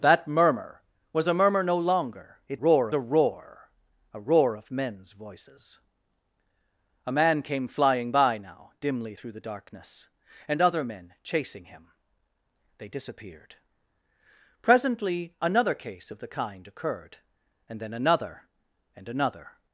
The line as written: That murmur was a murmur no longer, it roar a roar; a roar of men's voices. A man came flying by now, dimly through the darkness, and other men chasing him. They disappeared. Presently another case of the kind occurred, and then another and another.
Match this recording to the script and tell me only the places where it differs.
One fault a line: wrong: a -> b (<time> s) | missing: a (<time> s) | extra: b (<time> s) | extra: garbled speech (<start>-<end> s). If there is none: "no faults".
no faults